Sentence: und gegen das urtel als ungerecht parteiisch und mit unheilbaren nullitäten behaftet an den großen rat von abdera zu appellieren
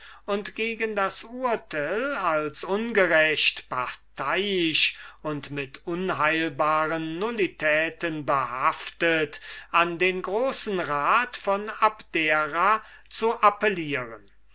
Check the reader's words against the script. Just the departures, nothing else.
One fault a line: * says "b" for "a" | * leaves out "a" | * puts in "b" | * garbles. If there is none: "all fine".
all fine